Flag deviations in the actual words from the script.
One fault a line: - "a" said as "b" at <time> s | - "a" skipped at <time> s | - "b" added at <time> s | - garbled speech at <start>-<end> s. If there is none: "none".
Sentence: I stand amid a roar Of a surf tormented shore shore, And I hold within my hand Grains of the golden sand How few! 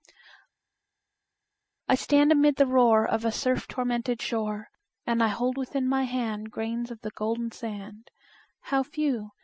- "a" said as "the" at 2.6 s
- "shore" skipped at 4.7 s